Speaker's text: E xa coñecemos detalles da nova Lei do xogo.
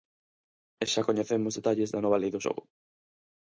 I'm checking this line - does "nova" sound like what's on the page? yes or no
yes